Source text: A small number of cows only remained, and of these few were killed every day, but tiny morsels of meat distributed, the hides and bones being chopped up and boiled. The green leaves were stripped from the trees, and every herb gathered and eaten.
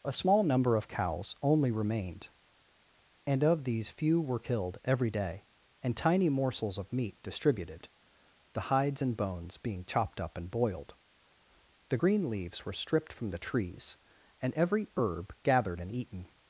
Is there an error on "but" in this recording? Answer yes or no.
yes